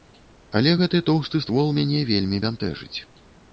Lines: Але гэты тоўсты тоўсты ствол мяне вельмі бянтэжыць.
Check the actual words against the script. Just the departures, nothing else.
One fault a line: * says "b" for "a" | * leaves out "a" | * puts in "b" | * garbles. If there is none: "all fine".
* leaves out "тоўсты"